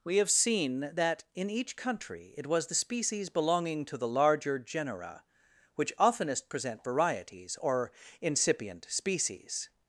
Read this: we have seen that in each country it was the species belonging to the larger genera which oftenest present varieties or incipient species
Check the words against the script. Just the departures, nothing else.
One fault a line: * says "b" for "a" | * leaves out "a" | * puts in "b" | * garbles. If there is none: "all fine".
all fine